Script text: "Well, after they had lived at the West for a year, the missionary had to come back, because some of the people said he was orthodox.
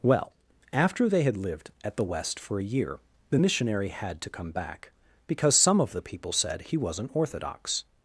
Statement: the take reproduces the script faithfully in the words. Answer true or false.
false